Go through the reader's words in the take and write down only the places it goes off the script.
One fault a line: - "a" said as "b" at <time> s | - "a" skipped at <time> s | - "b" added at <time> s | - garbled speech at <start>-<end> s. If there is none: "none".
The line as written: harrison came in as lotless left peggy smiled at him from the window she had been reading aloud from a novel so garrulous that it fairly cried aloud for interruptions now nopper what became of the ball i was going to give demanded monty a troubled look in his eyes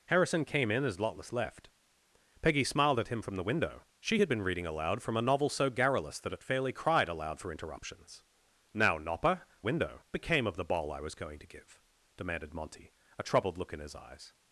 - "what" said as "window" at 9.6 s